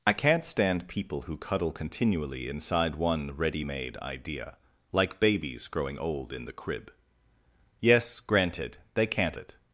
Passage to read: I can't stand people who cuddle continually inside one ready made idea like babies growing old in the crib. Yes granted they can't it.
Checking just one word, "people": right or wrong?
right